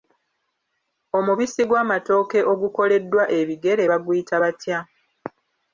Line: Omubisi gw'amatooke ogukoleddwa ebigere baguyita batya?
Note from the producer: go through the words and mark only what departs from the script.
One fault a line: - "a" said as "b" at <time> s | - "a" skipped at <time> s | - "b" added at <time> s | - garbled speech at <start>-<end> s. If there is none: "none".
none